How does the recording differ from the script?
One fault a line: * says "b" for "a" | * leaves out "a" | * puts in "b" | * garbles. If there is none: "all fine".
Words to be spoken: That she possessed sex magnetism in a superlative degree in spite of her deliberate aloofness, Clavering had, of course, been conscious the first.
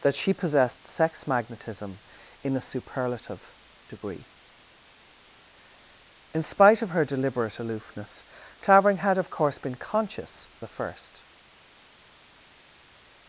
all fine